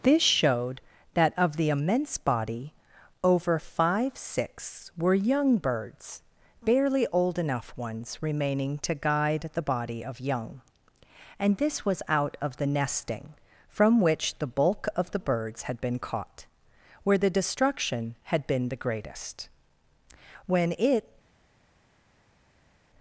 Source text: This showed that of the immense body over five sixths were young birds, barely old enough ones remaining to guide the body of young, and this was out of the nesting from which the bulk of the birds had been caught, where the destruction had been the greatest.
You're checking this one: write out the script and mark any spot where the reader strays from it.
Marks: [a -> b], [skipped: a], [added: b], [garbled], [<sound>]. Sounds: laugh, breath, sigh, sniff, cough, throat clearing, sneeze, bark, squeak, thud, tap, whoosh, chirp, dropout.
This showed that of the immense body over five sixths were young birds, barely old enough ones remaining to guide the body of young, and this was out of the nesting from which the bulk of the birds had been caught, where the destruction had been the greatest. [added: When it]